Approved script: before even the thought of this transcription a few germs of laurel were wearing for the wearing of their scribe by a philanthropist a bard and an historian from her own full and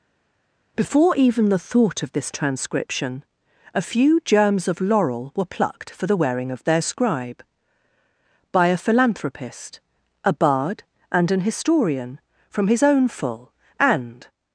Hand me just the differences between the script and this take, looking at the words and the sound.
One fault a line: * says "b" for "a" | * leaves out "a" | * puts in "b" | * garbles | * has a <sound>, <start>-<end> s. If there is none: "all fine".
* says "plucked" for "wearing"
* says "his" for "her"